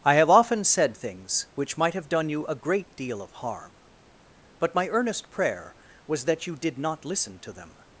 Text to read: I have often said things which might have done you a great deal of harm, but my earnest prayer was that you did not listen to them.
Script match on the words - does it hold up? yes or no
yes